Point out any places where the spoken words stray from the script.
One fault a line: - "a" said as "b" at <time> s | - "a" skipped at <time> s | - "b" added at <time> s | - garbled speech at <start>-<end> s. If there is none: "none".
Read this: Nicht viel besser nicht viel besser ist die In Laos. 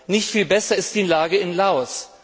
- "nicht viel besser" skipped at 0.8 s
- "Lage" added at 1.0 s